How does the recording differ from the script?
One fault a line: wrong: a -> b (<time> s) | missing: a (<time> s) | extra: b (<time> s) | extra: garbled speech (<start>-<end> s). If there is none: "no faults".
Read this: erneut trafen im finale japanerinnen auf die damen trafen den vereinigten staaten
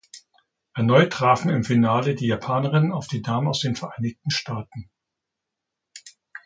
extra: die (2.1 s)
wrong: trafen -> aus (3.5 s)